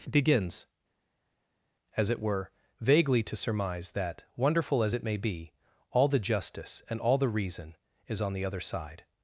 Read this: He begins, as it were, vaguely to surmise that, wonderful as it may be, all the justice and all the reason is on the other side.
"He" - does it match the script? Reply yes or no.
no